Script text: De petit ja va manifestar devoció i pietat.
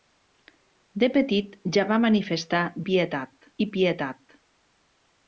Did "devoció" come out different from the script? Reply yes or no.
yes